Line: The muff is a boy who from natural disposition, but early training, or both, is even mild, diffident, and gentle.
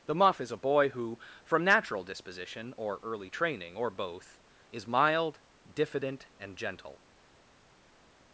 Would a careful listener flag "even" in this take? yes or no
yes